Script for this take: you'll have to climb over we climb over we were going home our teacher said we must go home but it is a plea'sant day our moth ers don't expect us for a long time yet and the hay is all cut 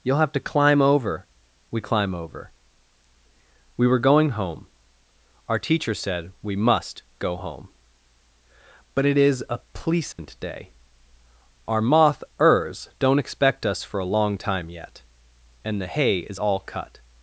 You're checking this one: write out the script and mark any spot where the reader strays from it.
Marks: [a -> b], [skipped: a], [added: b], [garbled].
you'll have to climb over we climb over we were going home our teacher said we must go home but it is a plea'sant day our moth ers don't expect us for a long time yet and the hay is all cut